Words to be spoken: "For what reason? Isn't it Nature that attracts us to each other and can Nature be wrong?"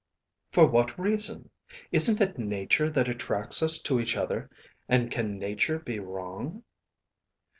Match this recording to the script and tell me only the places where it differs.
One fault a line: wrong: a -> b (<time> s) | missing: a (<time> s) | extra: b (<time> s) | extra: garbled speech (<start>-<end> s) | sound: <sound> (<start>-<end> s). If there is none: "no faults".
no faults